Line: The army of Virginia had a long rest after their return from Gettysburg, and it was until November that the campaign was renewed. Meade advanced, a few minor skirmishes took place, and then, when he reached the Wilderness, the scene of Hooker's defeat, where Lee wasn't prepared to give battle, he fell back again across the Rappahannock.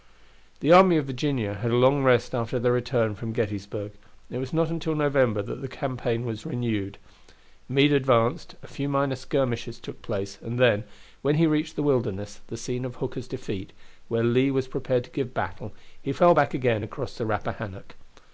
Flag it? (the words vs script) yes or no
yes